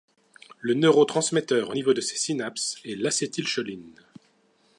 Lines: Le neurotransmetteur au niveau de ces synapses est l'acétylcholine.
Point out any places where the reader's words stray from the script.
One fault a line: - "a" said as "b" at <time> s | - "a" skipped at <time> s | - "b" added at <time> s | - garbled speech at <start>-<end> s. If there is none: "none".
none